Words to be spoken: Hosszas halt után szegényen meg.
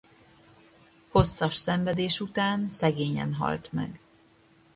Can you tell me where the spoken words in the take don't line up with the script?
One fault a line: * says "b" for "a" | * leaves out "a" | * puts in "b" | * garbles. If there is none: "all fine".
* says "szenvedés" for "halt"
* puts in "halt"